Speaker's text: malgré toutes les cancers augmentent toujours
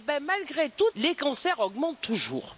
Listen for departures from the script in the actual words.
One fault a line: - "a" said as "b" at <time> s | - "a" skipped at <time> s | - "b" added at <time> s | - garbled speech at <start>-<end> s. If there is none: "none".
none